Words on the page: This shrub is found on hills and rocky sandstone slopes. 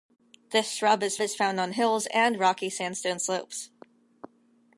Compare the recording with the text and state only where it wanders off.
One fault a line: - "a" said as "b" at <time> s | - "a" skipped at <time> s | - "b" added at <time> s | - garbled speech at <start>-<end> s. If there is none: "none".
- "is" added at 1.2 s